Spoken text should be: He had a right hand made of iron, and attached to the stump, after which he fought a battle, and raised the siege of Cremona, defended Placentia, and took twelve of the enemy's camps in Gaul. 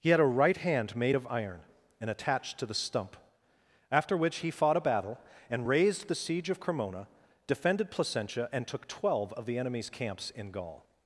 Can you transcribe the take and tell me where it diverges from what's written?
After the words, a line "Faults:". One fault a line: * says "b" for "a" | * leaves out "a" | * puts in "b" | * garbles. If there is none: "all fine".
He had a right hand made of iron, and attached to the stump, after which he fought a battle, and raised the siege of Cremona, defended Placentia, and took twelve of the enemy's camps in Gaul.
Faults:
all fine